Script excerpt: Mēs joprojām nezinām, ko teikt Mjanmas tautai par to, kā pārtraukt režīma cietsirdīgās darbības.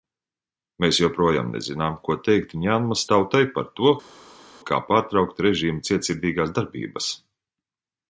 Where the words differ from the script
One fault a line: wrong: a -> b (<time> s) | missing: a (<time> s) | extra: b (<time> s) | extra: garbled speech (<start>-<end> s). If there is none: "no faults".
no faults